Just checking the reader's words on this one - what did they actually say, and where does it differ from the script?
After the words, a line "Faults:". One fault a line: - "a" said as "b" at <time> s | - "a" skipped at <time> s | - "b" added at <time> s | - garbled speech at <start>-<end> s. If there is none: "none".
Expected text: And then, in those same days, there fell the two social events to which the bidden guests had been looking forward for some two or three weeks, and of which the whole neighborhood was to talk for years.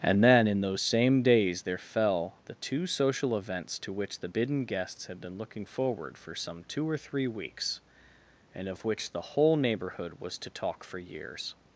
And then, in those same days, there fell the two social events to which the bidden guests had been looking forward for some two or three weeks, and of which the whole neighborhood was to talk for years.
Faults:
none